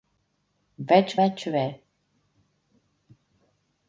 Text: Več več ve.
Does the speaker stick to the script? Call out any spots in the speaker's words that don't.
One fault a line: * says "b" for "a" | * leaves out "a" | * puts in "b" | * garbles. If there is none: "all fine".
all fine